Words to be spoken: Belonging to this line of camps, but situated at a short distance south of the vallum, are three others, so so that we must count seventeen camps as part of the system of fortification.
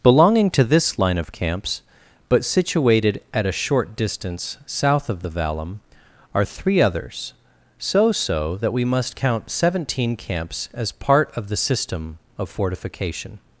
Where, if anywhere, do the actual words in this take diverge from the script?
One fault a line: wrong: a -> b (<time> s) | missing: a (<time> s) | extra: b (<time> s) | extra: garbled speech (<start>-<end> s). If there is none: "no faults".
no faults